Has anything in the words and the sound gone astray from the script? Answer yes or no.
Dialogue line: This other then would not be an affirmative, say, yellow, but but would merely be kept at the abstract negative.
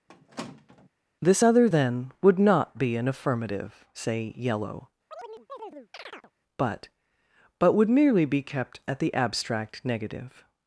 yes